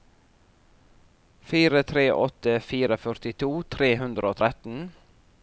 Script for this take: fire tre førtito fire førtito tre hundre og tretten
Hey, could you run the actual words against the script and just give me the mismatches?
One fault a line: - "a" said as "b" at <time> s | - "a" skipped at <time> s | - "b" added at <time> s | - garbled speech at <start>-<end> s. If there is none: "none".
- "førtito" said as "åtte" at 2.2 s